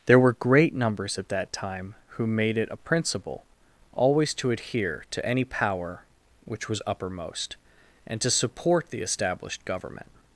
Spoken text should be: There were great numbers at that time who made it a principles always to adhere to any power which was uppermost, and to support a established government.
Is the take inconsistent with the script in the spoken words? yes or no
yes